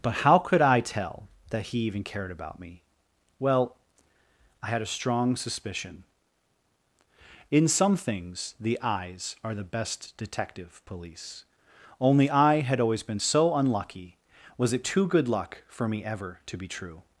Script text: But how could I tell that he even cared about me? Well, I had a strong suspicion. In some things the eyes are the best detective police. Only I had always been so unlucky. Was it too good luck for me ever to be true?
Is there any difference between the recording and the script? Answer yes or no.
no